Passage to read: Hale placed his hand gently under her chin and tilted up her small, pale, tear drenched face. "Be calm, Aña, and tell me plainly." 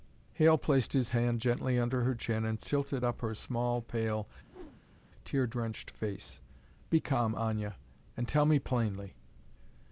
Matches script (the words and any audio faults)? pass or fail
fail